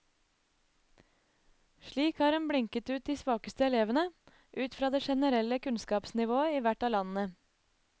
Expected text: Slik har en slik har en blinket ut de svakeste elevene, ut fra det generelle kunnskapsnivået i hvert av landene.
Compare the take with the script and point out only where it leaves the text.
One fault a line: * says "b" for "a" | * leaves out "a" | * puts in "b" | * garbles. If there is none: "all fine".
* leaves out "slik har en"